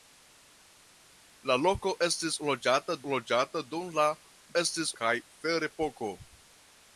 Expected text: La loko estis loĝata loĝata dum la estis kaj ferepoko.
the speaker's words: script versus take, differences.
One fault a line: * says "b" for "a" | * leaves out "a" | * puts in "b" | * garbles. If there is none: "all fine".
all fine